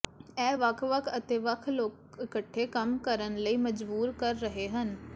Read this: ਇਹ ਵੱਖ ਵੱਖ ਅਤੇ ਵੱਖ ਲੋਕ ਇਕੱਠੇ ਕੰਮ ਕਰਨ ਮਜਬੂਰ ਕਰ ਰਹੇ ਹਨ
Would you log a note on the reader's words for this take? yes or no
yes